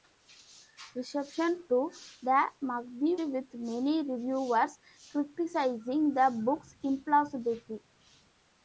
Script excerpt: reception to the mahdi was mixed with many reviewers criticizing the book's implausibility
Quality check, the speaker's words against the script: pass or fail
fail